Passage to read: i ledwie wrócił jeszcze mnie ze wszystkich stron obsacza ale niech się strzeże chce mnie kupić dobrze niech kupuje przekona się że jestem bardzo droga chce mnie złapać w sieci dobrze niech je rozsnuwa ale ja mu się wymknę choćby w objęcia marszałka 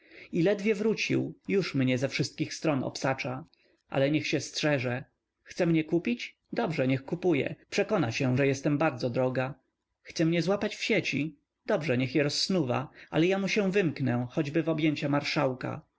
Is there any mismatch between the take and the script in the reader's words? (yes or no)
yes